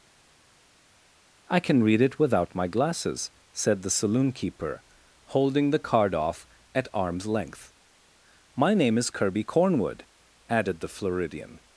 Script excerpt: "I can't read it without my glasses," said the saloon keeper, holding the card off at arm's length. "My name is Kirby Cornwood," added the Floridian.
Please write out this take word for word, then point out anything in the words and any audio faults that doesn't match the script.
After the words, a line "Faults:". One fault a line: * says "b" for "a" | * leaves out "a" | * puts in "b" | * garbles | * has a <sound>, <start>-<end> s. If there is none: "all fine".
"I can read it without my glasses," said the saloon keeper, holding the card off at arm's length. "My name is Kirby Cornwood," added the Floridian.
Faults:
* says "can" for "can't"